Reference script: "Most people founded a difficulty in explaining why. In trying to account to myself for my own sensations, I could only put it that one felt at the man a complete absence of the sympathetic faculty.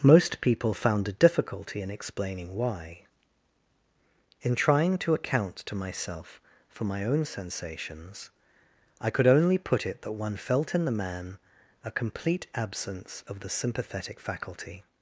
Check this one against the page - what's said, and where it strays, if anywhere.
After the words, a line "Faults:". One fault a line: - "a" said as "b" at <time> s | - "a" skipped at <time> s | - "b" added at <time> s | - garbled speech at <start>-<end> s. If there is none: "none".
"Most people found a difficulty in explaining why. In trying to account to myself for my own sensations, I could only put it that one felt in the man a complete absence of the sympathetic faculty.
Faults:
- "founded" said as "found" at 0.7 s
- "at" said as "in" at 10.7 s